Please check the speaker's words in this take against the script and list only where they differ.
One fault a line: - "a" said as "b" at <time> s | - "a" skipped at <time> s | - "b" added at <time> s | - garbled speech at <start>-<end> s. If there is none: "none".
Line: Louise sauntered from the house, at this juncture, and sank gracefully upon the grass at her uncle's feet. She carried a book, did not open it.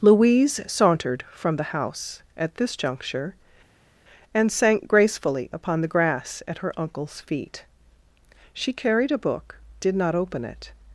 none